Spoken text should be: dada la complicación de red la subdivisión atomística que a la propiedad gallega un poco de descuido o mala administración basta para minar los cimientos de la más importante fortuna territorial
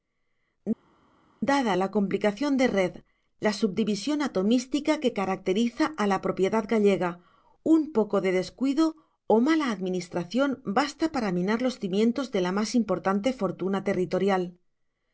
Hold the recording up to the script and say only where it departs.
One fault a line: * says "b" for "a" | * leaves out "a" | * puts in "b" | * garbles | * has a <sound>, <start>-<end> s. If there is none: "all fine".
* puts in "caracteriza"